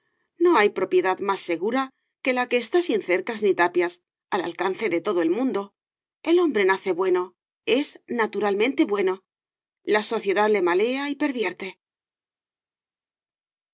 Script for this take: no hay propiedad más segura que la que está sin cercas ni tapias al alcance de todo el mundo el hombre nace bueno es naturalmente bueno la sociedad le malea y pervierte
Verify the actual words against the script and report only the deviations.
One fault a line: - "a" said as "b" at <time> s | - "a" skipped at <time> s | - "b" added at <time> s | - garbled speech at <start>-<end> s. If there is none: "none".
none